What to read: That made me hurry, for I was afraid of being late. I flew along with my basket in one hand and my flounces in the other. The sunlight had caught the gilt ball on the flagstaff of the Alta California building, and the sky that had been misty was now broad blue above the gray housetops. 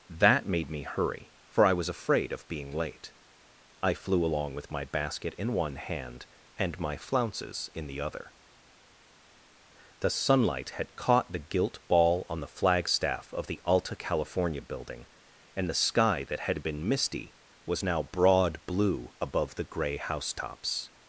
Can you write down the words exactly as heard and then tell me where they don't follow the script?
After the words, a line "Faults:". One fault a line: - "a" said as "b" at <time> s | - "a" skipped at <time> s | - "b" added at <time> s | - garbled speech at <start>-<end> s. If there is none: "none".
That made me hurry, for I was afraid of being late. I flew along with my basket in one hand and my flounces in the other. The sunlight had caught the gilt ball on the flagstaff of the Alta California building, and the sky that had been misty was now broad blue above the gray housetops.
Faults:
none